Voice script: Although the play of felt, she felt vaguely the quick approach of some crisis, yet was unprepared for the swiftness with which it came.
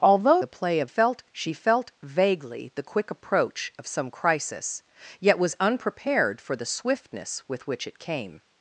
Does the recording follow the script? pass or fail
pass